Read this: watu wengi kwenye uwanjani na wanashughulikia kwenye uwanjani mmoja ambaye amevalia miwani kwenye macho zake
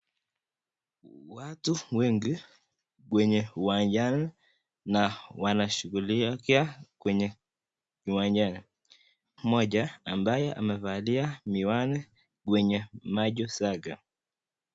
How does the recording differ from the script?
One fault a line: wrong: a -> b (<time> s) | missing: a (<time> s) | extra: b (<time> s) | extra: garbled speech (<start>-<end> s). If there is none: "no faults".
no faults